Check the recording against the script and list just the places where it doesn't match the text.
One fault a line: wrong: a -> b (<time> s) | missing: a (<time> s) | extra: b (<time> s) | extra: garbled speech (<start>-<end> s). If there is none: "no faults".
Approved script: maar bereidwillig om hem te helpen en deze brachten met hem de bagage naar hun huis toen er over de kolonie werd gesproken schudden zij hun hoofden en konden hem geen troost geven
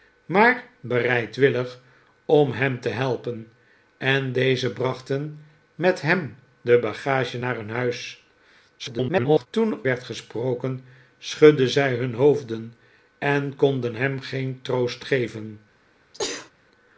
extra: garbled speech (8.8-9.5 s)
missing: over de kolonie (9.8 s)